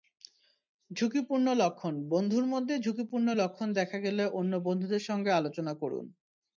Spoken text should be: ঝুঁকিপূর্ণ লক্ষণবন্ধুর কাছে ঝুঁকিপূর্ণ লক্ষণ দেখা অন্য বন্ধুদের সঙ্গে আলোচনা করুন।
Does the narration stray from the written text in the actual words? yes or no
yes